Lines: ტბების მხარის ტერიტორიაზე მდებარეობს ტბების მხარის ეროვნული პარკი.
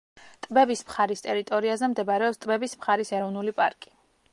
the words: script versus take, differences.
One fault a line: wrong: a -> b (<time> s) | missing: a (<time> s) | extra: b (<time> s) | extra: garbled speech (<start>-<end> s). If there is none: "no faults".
no faults